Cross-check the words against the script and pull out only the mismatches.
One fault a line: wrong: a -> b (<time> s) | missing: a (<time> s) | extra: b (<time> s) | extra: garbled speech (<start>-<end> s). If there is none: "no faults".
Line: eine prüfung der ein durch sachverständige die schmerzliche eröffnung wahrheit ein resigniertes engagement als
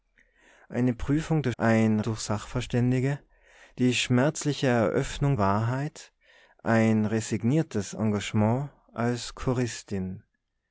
no faults